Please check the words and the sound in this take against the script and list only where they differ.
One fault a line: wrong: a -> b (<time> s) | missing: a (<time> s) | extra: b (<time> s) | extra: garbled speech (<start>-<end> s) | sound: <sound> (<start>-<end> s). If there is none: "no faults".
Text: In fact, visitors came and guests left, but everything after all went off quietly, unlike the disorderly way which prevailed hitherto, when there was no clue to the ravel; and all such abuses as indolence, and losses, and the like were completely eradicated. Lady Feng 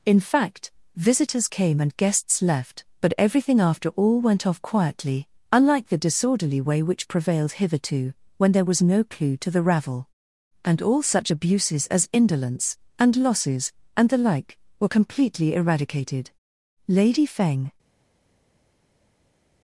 no faults